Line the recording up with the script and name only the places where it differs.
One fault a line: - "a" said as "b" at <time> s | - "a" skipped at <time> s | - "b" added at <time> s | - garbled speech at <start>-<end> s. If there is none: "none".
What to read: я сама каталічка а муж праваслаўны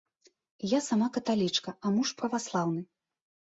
none